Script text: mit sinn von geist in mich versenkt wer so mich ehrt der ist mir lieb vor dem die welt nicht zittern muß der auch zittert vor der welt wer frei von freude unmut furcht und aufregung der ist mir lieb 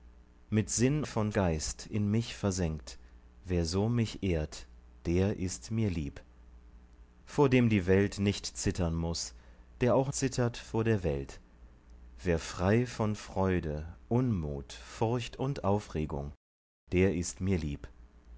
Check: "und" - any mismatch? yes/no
no